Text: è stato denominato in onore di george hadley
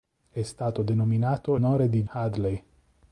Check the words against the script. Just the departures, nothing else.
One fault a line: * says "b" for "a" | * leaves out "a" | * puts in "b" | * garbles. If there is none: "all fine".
* leaves out "in"
* leaves out "george"